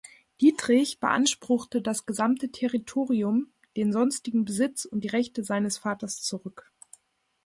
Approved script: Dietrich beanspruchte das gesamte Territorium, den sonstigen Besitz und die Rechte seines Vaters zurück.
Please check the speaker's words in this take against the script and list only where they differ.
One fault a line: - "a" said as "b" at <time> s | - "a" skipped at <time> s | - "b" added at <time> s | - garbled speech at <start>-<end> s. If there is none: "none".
none